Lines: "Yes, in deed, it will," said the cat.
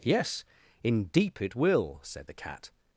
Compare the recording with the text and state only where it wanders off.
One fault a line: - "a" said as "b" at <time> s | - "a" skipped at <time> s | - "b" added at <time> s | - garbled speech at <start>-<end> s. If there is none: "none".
- "deed" said as "deep" at 1.1 s